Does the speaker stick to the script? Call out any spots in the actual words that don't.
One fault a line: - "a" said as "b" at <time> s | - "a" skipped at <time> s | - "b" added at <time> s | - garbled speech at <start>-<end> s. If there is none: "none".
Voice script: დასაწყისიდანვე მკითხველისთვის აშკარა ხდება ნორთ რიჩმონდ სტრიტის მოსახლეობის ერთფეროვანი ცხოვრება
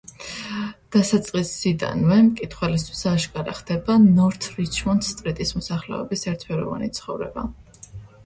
none